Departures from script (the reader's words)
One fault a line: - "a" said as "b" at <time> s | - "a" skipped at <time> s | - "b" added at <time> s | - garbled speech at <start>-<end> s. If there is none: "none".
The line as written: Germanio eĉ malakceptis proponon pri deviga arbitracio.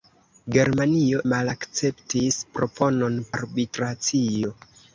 - "eĉ" skipped at 1.2 s
- "pri deviga" skipped at 3.2 s